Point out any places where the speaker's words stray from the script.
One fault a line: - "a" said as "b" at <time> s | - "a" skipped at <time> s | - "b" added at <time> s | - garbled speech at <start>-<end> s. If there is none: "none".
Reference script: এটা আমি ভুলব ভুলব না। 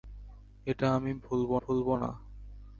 none